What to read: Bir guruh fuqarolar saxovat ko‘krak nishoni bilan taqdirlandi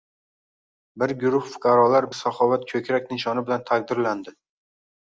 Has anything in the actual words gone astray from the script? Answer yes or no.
no